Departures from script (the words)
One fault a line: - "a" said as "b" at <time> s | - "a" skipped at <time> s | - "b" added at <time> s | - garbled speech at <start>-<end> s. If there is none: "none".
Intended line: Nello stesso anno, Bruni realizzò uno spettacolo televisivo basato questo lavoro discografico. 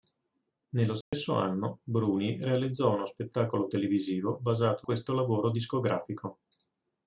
none